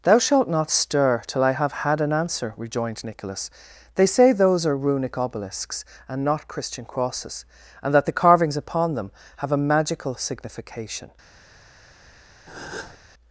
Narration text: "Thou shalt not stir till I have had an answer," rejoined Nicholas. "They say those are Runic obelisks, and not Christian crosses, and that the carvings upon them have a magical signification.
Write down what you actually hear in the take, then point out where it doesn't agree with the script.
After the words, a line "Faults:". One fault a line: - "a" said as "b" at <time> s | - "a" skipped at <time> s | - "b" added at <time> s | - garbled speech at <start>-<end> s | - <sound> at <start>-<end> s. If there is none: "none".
"Thou shalt not stir till I have had an answer," rejoined Nicholas. "They say those are Runic obelisks, and not Christian crosses, and that the carvings upon them have a magical signification.
Faults:
- breath at 12.5-13.0 s